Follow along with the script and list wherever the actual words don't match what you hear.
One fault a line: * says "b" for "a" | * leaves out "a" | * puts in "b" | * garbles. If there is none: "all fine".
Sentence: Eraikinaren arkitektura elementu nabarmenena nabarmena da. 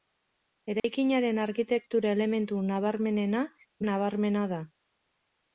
all fine